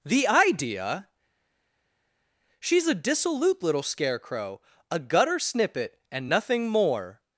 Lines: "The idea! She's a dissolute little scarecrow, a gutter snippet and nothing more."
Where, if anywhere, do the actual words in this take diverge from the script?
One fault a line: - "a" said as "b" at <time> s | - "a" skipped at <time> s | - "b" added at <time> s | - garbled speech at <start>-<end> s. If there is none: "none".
none